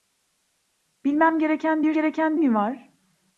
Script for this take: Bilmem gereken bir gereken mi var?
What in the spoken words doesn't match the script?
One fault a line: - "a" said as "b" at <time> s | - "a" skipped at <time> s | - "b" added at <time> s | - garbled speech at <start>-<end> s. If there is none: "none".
none